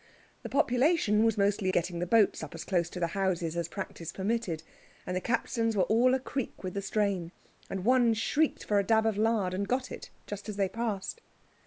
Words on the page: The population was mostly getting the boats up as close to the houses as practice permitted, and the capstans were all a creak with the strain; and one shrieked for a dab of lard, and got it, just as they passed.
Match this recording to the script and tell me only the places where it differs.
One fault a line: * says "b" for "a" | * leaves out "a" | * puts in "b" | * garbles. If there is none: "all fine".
all fine